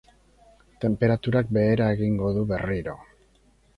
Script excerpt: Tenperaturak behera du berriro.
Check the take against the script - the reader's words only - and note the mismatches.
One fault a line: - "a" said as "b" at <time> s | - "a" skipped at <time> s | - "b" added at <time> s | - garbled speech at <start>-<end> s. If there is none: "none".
- "egingo" added at 2.0 s